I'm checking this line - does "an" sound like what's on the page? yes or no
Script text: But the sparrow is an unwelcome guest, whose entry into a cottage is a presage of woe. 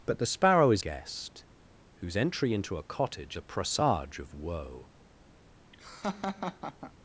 no